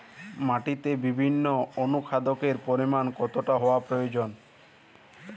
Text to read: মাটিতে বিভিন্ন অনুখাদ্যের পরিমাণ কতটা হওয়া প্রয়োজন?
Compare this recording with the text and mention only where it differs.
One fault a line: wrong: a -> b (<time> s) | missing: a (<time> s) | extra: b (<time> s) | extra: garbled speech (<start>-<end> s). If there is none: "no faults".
no faults